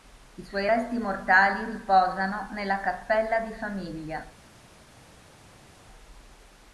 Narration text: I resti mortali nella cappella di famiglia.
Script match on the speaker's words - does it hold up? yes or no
no